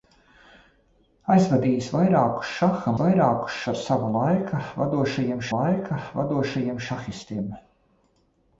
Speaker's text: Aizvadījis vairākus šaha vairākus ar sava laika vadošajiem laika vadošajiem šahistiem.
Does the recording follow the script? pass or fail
pass